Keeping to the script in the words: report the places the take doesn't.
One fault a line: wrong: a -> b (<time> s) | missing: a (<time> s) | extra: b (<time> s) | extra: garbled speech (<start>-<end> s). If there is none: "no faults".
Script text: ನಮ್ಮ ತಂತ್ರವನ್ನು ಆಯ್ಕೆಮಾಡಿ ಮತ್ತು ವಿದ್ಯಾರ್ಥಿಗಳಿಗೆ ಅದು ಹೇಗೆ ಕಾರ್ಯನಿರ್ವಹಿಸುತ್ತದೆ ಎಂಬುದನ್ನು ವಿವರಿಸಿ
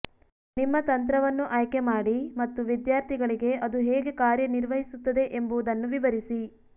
wrong: ನಮ್ಮ -> ನಿಮ್ಮ (0.6 s)